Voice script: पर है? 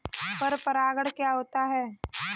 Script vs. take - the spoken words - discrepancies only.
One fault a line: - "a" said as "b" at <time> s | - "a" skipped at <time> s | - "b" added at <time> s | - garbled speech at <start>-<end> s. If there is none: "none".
- "परागण क्या होता" added at 0.6 s